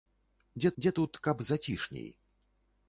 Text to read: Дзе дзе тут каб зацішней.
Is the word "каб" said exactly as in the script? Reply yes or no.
yes